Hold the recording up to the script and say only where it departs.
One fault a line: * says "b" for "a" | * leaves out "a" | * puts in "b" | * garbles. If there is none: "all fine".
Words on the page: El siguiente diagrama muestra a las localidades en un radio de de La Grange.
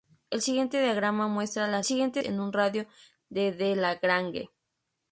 * says "siguiente" for "localidades"